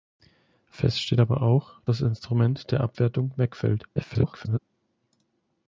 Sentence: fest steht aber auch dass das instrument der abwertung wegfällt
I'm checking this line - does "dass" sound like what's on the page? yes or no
no